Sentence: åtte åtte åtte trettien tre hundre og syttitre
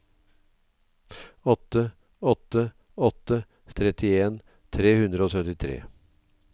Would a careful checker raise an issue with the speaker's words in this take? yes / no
no